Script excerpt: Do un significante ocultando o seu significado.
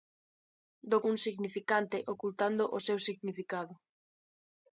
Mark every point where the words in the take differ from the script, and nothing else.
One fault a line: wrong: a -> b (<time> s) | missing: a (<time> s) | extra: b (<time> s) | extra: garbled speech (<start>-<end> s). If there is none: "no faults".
no faults